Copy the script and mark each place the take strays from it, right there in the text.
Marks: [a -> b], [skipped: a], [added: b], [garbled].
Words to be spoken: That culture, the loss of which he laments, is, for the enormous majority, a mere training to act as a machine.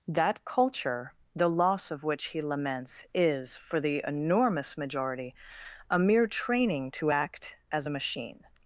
That culture, the loss of which he laments, is, for the enormous majority, a mere training to act as a machine.